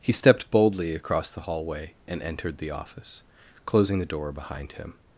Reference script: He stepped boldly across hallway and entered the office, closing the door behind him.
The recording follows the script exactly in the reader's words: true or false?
false